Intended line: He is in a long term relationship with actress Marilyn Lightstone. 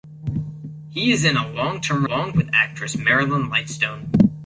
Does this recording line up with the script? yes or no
no